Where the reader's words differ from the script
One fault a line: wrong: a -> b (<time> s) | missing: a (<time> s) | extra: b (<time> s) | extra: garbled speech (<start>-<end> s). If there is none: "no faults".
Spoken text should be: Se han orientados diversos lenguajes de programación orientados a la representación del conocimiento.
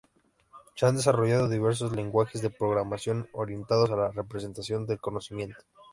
wrong: orientados -> desarrollado (0.9 s)